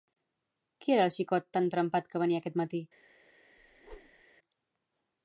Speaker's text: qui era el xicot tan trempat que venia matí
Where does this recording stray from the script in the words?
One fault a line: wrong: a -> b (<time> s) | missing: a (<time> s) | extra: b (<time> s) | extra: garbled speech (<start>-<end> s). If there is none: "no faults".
extra: aquest (2.4 s)